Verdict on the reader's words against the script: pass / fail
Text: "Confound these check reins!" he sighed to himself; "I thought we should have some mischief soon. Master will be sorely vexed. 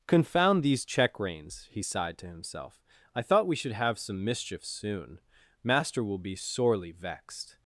pass